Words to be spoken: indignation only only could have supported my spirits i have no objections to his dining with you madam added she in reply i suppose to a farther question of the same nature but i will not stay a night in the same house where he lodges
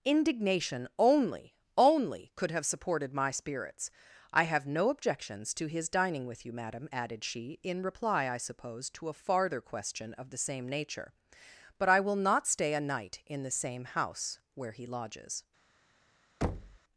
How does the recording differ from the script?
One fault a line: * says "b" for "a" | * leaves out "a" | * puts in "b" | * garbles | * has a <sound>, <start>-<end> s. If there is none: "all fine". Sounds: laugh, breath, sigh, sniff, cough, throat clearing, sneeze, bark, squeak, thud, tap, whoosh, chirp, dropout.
* has a thud, 16.4-16.8 s